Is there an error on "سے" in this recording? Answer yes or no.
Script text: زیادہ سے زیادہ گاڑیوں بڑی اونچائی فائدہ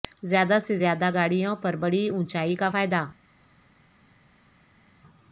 no